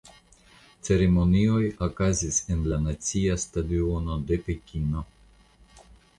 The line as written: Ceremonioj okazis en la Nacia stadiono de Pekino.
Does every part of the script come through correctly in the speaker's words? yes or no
yes